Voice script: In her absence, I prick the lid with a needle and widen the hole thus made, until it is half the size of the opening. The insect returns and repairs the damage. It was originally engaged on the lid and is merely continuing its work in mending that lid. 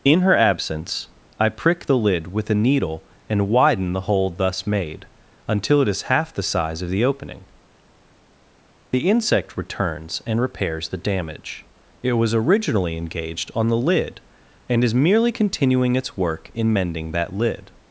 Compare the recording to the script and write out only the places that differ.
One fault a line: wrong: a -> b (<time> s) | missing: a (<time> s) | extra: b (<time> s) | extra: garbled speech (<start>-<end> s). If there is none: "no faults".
no faults